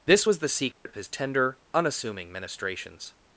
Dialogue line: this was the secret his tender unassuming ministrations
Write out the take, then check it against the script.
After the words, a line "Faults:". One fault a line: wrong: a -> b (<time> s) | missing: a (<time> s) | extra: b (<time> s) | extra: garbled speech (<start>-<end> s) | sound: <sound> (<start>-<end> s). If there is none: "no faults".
this was the secret his tender unassuming ministrations
Faults:
sound: dropout (0.7-0.9 s)